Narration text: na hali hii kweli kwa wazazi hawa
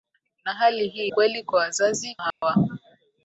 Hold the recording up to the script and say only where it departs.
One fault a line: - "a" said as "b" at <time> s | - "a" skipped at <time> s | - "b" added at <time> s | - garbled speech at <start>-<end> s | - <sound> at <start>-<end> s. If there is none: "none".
- dropout at 2.3-2.4 s